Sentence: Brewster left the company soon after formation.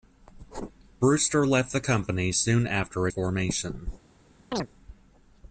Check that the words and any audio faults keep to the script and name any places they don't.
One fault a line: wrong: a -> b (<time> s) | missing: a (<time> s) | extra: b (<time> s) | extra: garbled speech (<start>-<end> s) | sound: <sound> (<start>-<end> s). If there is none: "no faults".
sound: chirp (4.5-4.7 s)